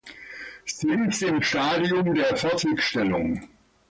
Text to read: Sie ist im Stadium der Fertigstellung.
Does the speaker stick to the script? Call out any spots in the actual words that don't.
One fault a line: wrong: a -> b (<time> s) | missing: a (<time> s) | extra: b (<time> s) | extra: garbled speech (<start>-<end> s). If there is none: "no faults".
no faults